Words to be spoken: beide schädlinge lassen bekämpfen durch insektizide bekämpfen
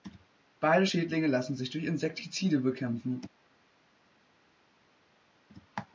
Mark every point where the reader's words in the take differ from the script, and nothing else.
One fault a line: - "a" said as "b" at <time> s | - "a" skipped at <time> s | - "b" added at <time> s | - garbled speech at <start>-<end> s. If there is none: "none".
- "bekämpfen" said as "sich" at 1.6 s